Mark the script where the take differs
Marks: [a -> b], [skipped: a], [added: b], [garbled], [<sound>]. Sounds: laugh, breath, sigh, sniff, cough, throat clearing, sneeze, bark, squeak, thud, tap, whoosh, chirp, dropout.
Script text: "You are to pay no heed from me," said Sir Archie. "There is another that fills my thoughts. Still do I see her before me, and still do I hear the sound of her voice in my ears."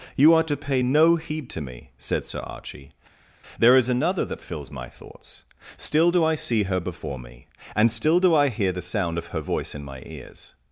"You are to pay no heed [from -> to] me," said Sir Archie. "There is another that fills my thoughts. Still do I see her before me, and still do I hear the sound of her voice in my ears."